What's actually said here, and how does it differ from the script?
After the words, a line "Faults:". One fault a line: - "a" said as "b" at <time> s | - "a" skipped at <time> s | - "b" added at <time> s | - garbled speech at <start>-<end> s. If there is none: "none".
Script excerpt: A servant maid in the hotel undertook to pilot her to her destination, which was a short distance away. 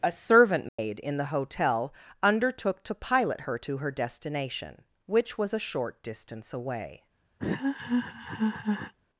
A servant maid in the hotel undertook to pilot her to her destination, which was a short distance away.
Faults:
none